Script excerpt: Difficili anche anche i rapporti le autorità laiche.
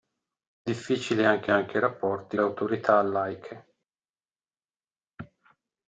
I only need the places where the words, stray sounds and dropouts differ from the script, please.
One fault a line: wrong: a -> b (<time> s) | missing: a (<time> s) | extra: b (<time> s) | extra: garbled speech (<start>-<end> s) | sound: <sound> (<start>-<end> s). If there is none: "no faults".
no faults